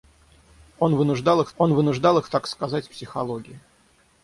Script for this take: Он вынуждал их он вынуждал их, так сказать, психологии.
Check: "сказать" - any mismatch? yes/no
no